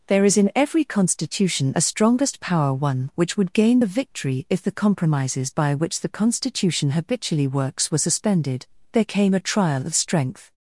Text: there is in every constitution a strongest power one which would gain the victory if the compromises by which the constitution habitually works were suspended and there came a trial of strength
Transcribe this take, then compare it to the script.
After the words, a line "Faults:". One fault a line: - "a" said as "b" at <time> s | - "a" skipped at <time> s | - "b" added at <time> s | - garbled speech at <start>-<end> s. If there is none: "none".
there is in every constitution a strongest power one which would gain the victory if the compromises by which the constitution habitually works were suspended there came a trial of strength
Faults:
- "and" skipped at 8.7 s